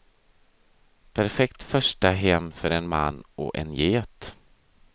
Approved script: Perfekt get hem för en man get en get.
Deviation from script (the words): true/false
true